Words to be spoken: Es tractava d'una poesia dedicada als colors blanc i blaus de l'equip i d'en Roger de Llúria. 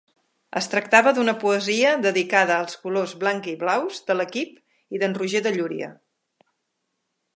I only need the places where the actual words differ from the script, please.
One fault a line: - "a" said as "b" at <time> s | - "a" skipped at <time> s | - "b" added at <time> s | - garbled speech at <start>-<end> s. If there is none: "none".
none